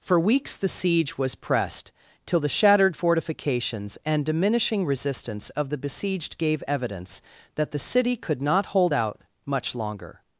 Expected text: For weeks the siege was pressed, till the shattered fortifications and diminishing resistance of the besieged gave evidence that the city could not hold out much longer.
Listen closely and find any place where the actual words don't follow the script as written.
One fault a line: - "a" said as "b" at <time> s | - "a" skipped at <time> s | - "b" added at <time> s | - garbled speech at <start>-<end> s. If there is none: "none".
none